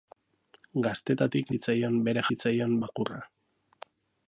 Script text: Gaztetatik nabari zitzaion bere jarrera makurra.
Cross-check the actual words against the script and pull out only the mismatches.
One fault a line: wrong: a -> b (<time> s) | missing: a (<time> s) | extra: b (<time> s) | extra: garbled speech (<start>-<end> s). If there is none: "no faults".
missing: nabari (1.5 s)
wrong: jarrera -> zitzaion (2.3 s)